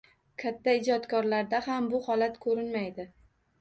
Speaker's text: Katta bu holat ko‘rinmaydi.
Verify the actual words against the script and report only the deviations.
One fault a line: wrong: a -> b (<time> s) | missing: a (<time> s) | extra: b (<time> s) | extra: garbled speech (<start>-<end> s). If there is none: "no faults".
extra: ijodkorlarda ham (0.8 s)